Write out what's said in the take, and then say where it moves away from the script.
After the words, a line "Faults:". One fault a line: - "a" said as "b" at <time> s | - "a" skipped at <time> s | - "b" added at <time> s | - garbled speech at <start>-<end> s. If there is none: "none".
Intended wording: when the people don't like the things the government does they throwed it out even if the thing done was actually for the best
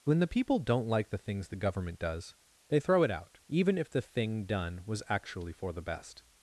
when the people don't like the things the government does they throw it out even if the thing done was actually for the best
Faults:
- "throwed" said as "throw" at 2.8 s